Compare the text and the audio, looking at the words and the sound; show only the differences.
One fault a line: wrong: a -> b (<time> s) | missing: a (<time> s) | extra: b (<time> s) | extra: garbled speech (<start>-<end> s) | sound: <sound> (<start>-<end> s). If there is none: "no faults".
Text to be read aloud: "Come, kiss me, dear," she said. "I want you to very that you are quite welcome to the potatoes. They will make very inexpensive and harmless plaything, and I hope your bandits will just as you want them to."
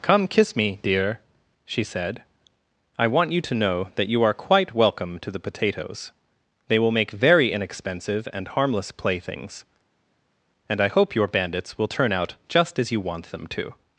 wrong: very -> know (3.5 s)
wrong: plaything -> playthings (8.9 s)
extra: turn out (11.9 s)